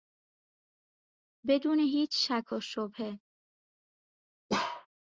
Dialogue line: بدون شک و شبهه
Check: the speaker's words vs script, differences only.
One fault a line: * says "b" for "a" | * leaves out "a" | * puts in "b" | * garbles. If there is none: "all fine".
* puts in "هیچ"